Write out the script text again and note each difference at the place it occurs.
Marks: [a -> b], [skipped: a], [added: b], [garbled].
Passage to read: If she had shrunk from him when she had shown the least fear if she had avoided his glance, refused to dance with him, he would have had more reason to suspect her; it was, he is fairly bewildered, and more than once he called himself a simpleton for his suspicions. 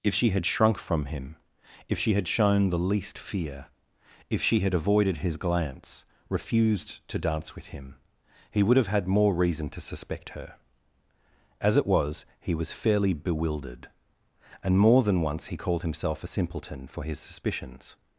If she had shrunk from him [when -> if] she had shown the least fear if she had avoided his glance, refused to dance with him, he would have had more reason to suspect her; [added: as] it was, he [is -> was] fairly bewildered, and more than once he called himself a simpleton for his suspicions.